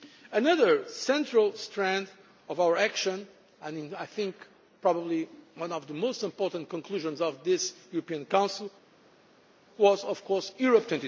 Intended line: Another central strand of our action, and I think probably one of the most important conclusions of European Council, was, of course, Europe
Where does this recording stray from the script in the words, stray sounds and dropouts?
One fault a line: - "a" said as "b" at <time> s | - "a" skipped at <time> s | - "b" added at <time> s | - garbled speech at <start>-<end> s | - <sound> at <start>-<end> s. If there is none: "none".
- "this" added at 7.4 s